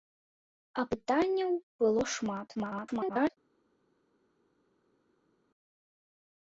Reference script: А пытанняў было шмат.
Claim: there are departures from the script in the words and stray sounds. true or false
true